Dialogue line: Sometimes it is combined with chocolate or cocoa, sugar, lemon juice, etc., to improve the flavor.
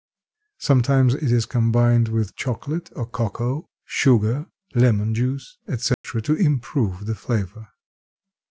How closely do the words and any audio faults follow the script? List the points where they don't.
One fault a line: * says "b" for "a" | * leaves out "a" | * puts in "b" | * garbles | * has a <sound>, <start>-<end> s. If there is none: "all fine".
* has a dropout, 5.9-6.0 s